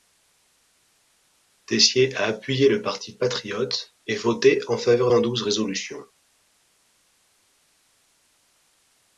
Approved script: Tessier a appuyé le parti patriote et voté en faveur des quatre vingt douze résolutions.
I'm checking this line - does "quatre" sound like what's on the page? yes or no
no